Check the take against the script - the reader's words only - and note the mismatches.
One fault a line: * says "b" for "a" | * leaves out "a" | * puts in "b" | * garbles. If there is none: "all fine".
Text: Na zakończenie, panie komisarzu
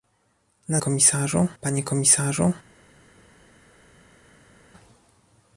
* says "komisarzu" for "zakończenie"